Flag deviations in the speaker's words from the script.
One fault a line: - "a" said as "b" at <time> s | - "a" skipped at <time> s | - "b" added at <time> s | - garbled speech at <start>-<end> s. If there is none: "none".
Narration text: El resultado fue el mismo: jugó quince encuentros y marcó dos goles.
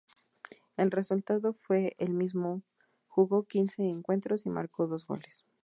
none